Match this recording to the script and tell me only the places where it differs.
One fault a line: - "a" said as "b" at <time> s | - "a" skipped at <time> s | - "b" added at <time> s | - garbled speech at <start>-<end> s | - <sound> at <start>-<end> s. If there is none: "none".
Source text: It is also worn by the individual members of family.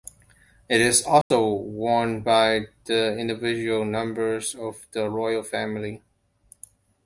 - dropout at 1.2-1.3 s
- "the royal" added at 4.9 s